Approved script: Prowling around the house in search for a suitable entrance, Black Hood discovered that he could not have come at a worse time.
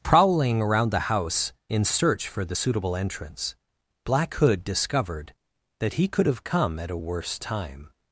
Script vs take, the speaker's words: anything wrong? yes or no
yes